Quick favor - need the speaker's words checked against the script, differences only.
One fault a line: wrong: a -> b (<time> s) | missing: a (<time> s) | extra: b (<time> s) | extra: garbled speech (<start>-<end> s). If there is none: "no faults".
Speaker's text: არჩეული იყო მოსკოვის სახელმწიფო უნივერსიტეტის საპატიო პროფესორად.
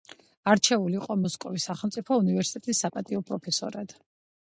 no faults